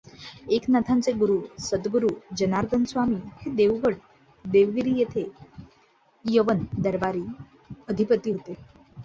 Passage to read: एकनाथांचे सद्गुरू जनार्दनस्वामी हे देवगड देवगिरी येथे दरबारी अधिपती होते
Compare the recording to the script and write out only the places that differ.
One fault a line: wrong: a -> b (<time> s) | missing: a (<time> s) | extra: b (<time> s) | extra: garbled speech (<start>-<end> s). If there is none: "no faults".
extra: गुरू (1.1 s)
extra: यवन (6.2 s)